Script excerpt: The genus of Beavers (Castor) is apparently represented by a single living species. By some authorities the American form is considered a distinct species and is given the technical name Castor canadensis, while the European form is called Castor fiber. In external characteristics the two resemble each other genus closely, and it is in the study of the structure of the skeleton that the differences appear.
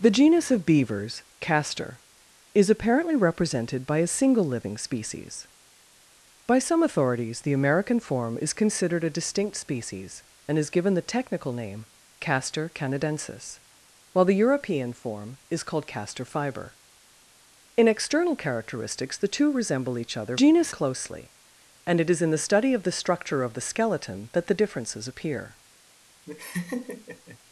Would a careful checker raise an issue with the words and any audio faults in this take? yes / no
yes